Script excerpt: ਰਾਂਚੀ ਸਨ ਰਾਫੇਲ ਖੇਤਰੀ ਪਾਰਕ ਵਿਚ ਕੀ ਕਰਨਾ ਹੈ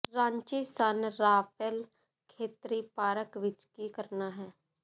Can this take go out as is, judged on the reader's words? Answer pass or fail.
pass